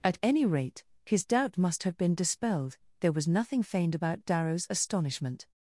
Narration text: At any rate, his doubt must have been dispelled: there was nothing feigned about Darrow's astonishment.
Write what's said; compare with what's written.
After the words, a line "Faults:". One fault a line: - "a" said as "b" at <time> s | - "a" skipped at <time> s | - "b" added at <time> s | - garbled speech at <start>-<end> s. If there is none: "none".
At any rate, his doubt must have been dispelled: there was nothing feigned about Darrow's astonishment.
Faults:
none